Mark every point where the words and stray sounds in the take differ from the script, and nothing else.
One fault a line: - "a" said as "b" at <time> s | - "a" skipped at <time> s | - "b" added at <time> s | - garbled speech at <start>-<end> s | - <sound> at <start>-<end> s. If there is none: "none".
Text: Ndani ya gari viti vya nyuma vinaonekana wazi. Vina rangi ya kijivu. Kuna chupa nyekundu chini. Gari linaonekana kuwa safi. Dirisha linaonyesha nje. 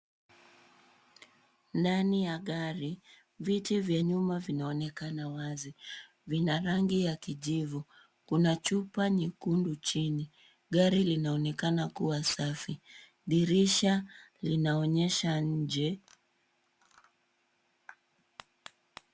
none